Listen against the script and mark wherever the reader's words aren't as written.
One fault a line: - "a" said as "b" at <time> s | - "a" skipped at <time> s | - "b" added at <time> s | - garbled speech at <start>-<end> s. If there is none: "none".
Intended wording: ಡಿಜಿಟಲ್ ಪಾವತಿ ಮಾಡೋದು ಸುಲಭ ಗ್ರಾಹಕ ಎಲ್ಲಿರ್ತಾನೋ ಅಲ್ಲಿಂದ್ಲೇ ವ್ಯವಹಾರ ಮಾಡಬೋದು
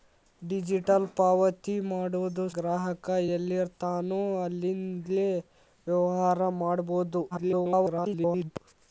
- "ಸುಲಭ" skipped at 2.5 s
- garbled speech at 7.3-8.5 s